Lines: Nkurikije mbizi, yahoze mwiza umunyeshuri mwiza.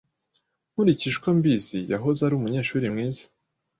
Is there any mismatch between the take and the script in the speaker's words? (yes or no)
yes